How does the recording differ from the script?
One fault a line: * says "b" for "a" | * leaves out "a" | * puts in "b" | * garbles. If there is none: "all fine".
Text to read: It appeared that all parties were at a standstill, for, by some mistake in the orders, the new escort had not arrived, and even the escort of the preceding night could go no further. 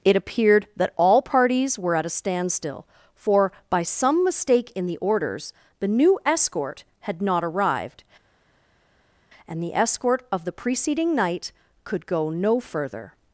* leaves out "even"